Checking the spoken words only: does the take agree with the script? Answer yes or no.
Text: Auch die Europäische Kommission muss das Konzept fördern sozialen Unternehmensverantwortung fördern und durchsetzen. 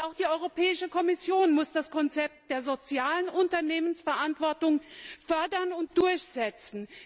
no